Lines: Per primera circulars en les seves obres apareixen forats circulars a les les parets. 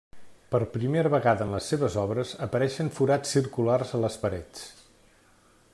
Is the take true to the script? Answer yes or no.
no